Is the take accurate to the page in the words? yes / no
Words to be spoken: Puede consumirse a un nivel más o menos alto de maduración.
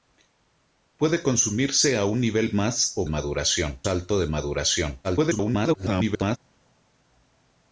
no